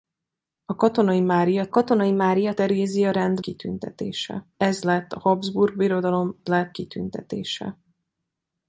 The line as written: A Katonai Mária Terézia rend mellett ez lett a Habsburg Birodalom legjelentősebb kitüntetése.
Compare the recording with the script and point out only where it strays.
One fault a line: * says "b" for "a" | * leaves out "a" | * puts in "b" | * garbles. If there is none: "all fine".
* puts in "Katonai Mária"
* says "kitüntetése" for "mellett"
* says "lett" for "legjelentősebb"